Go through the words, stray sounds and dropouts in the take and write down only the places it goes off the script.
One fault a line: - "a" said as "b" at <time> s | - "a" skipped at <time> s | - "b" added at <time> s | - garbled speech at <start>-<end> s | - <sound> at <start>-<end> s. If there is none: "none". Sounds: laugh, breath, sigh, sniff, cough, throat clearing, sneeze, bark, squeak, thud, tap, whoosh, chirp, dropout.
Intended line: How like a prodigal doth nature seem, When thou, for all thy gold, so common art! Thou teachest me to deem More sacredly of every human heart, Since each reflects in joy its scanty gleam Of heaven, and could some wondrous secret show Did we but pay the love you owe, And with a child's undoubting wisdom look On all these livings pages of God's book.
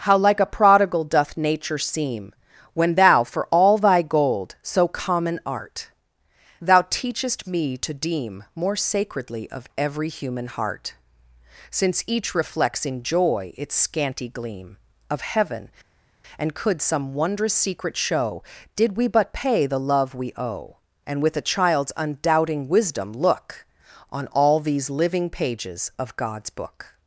- "you" said as "we" at 20.1 s
- "livings" said as "living" at 24.9 s